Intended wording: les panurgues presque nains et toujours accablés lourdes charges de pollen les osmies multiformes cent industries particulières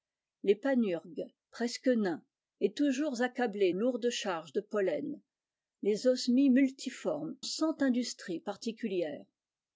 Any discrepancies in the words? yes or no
no